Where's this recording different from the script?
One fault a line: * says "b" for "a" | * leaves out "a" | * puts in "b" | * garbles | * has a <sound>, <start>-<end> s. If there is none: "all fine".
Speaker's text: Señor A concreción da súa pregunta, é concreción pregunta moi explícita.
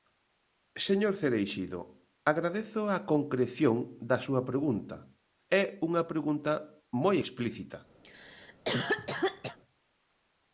* puts in "Cereixido agradezo"
* says "unha" for "concreción"
* has a cough, 8.0-9.6 s